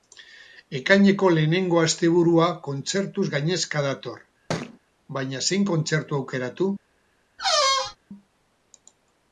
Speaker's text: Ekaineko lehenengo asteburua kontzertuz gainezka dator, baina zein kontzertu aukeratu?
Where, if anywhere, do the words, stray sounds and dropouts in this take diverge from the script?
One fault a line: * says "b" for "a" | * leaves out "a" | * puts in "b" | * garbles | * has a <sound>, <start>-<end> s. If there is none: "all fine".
* has a thud, 4.5-4.8 s
* has a squeak, 7.4-8.0 s